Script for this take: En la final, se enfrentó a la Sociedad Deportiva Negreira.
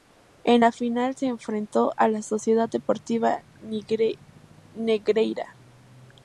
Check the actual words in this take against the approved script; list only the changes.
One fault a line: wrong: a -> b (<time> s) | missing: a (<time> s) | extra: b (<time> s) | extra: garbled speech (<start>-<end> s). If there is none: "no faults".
no faults